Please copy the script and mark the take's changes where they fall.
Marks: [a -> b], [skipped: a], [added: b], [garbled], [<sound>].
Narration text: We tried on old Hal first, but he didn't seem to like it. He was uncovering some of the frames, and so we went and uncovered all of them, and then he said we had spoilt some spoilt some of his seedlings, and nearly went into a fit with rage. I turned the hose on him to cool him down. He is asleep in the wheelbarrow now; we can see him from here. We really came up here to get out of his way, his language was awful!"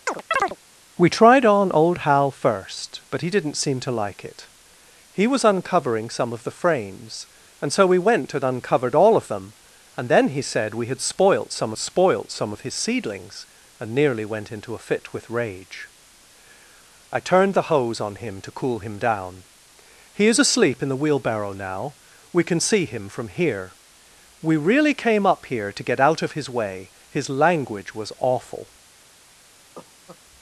[chirp] We tried on old Hal first, but he didn't seem to like it. He was uncovering some of the frames, and so we went and uncovered all of them, and then he said we had spoilt some spoilt some of his seedlings, and nearly went into a fit with rage. I turned the hose on him to cool him down. He is asleep in the wheelbarrow now; we can see him from here. We really came up here to get out of his way, his language was awful!" [cough]